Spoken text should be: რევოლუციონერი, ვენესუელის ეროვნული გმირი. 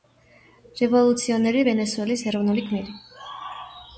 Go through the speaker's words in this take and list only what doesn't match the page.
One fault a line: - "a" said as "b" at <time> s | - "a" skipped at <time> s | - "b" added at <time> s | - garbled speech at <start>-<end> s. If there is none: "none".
none